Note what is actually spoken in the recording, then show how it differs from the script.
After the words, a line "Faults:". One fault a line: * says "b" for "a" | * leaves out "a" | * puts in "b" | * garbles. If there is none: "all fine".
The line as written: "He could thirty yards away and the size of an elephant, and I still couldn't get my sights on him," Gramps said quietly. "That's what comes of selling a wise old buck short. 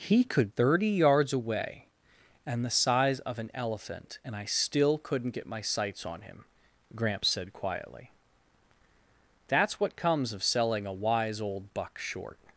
"He could thirty yards away and the size of an elephant, and I still couldn't get my sights on him," Gramps said quietly. "That's what comes of selling a wise old buck short.
Faults:
all fine